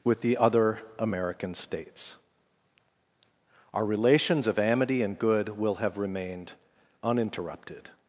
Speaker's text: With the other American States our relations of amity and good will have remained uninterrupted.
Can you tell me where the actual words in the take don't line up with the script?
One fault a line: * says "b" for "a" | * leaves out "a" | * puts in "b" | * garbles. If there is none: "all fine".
all fine